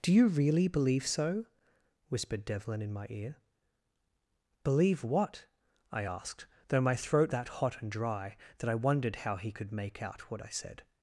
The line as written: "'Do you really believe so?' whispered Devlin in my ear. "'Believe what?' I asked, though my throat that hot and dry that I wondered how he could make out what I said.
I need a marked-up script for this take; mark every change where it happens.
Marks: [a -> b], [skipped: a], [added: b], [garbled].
"'Do you really believe so?' whispered Devlin in my ear. "'Believe what?' I asked, though my throat that hot and dry that I wondered how he could make out what I said.